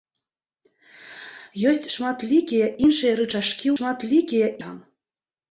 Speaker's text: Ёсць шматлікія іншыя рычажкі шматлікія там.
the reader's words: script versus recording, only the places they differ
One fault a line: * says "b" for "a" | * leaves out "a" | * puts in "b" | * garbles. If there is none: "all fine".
all fine